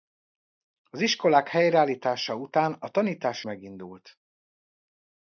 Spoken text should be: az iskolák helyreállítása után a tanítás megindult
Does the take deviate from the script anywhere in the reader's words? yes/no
no